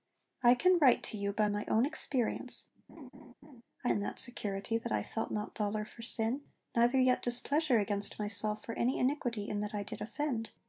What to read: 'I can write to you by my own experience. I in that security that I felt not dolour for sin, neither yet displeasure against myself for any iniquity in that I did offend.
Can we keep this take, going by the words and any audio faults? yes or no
no